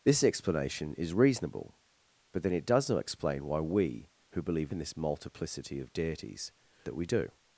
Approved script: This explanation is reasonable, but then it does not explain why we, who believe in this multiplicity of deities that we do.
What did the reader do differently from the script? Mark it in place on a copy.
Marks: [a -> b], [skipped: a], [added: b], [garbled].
This explanation is reasonable, but then it does not explain why we, who believe in this multiplicity of deities that we do.